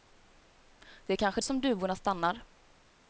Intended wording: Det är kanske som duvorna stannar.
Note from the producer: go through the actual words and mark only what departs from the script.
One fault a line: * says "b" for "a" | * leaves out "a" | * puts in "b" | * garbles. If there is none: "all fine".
all fine